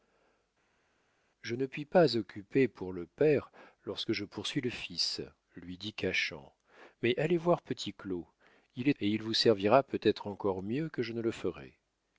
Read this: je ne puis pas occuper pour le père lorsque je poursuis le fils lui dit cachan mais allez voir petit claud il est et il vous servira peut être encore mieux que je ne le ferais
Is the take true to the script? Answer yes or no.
yes